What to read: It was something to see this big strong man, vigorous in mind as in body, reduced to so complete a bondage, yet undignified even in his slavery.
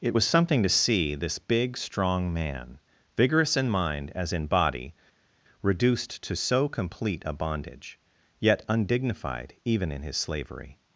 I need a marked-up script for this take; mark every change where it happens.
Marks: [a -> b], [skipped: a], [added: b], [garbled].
It was something to see this big strong man, vigorous in mind as in body, reduced to so complete a bondage, yet undignified even in his slavery.